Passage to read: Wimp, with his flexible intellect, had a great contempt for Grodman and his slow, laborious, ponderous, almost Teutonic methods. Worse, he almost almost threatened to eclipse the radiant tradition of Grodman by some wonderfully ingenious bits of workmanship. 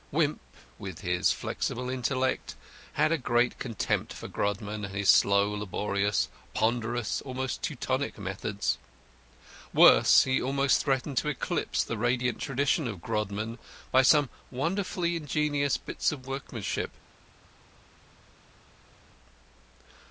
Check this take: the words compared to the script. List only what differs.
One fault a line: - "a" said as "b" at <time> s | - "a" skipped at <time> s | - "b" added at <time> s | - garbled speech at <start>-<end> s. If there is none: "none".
- "almost" skipped at 10.8 s